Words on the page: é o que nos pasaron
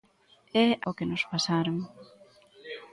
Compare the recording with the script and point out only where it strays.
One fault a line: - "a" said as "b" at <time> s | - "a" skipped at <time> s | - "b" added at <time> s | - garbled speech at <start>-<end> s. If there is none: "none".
none